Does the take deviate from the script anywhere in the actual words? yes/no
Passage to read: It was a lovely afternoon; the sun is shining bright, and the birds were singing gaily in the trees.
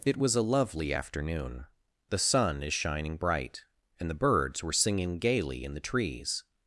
no